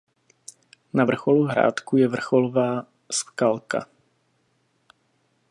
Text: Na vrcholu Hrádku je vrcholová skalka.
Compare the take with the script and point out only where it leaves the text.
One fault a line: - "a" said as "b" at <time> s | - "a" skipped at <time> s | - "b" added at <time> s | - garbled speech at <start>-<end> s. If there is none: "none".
none